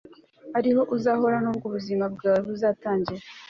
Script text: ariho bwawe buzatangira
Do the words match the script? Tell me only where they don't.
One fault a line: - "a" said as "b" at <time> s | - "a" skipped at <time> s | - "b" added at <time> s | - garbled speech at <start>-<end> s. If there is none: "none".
- "uzahora nubwo ubuzima" added at 0.9 s